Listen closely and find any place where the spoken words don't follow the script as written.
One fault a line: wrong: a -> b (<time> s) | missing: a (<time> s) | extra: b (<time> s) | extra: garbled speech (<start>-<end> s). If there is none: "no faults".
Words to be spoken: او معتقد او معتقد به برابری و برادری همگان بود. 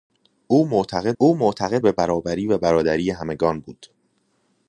no faults